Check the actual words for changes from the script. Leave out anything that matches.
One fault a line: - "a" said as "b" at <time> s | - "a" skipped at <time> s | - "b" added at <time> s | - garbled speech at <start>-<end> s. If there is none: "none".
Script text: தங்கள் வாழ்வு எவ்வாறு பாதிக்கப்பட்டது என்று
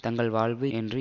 - "எவ்வாறு பாதிக்கப்பட்டது" skipped at 0.7 s